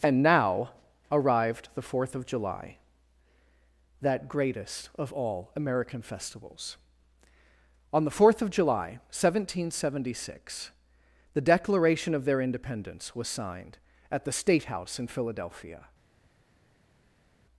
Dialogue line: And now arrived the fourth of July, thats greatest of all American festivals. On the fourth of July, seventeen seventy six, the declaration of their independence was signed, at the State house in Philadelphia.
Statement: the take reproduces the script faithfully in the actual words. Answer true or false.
false